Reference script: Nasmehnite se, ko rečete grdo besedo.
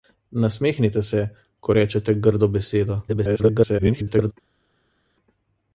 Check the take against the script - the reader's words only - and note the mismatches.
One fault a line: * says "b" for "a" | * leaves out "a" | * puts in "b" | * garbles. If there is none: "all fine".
* garbles